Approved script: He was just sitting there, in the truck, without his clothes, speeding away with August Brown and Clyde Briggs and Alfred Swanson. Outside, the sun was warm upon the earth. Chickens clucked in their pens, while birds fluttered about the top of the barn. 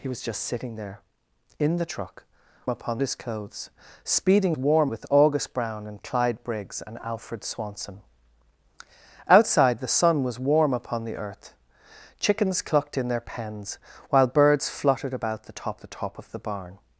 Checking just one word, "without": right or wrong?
wrong